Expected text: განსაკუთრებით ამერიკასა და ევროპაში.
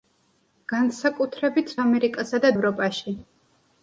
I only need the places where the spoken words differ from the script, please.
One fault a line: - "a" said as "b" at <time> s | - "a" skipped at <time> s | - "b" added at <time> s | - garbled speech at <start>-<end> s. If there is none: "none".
none